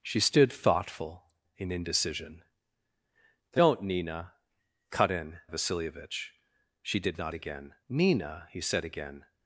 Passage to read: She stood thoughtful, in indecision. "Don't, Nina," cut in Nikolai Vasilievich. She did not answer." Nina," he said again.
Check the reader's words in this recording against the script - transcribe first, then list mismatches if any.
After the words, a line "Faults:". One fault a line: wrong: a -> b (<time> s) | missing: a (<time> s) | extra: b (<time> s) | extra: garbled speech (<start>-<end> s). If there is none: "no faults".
She stood thoughtful, in indecision. "Don't, Nina," cut in Vasilievich. She did not again." Nina," he said again.
Faults:
missing: Nikolai (5.4 s)
wrong: answer -> again (7.3 s)